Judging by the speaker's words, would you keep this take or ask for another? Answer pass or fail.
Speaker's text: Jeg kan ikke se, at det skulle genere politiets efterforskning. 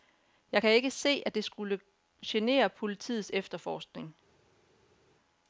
pass